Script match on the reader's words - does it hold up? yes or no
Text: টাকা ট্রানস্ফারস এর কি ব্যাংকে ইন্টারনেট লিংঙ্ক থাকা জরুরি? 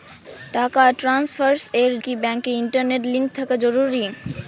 yes